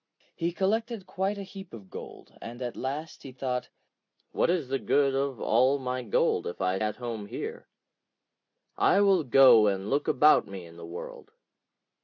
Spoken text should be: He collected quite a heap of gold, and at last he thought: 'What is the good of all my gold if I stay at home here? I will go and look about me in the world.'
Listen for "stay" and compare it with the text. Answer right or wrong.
wrong